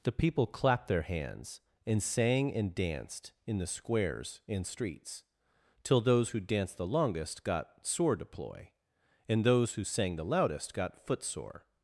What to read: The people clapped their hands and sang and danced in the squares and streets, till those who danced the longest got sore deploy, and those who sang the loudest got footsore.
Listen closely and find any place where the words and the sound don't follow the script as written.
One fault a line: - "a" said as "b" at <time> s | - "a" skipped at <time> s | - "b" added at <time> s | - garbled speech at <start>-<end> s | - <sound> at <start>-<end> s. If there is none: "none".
none